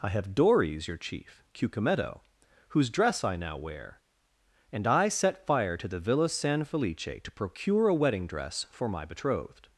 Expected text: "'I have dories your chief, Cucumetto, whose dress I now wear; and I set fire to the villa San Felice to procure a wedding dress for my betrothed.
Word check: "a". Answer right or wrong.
right